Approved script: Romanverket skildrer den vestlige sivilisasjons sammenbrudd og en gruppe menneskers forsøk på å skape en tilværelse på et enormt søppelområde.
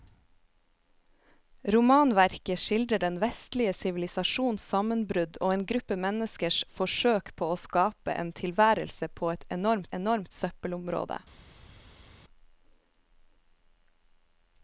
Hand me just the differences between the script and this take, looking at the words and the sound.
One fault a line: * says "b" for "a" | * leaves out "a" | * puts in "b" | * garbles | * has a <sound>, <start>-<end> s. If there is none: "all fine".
* puts in "enormt"